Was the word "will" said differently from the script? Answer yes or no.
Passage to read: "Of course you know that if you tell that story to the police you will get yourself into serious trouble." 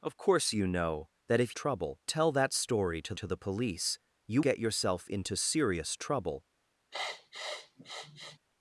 yes